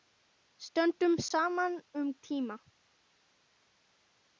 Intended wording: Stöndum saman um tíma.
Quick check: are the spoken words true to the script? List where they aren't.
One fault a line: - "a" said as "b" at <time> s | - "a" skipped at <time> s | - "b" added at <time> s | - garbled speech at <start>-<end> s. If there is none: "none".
none